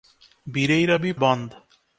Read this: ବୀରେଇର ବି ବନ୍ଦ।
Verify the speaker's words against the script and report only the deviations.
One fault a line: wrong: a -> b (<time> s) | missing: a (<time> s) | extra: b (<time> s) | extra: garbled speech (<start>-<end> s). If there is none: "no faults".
no faults